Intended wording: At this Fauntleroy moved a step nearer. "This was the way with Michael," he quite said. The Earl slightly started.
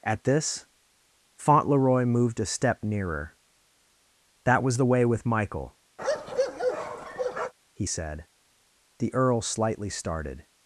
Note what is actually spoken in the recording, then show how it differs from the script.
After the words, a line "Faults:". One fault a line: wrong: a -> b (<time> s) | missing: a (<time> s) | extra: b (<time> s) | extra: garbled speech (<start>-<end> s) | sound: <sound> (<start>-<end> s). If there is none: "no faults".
At this Fauntleroy moved a step nearer. "That was the way with Michael," he said. The Earl slightly started.
Faults:
wrong: This -> That (4.5 s)
sound: bark (6.0-7.5 s)
missing: quite (7.9 s)